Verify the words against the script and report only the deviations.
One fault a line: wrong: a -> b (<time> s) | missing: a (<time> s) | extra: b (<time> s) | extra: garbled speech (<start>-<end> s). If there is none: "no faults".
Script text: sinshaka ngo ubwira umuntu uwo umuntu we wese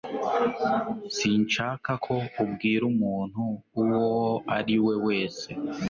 wrong: ngo -> ko (2.0 s)
wrong: umuntu -> ari (4.6 s)